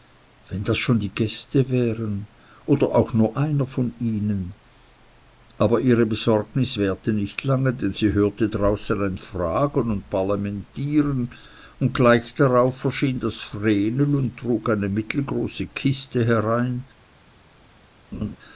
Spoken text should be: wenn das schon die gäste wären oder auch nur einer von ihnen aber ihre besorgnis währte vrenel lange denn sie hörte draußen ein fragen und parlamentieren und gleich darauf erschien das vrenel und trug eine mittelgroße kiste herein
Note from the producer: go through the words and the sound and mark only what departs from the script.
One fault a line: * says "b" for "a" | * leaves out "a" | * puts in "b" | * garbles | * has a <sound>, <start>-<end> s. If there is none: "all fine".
* says "nicht" for "vrenel"
* has a laugh, 18.1-18.4 s